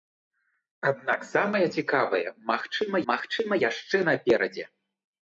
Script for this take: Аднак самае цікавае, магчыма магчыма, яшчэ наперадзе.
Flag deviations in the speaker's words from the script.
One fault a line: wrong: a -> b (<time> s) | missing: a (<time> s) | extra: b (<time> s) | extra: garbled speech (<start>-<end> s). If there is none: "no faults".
no faults